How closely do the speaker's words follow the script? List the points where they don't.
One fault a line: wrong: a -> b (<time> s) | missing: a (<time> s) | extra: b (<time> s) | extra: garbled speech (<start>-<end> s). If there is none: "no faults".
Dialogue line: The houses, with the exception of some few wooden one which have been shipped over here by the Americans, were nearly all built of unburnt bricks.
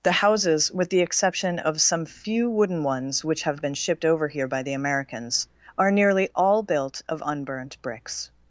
wrong: one -> ones (2.8 s)
wrong: were -> are (5.8 s)